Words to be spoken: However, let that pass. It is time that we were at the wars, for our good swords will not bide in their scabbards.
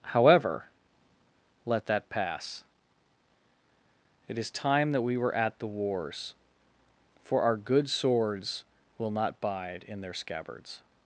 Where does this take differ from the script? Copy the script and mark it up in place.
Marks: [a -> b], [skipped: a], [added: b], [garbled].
However, let that pass. It is time that we were at the wars, for our good swords will not bide in their scabbards.